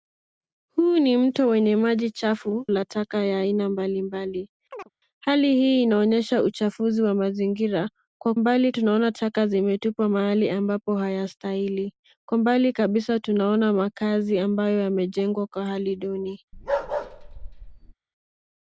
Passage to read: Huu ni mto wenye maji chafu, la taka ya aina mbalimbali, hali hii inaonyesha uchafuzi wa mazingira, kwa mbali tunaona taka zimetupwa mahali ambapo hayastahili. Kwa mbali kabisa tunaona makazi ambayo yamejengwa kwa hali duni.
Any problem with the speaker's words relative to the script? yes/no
no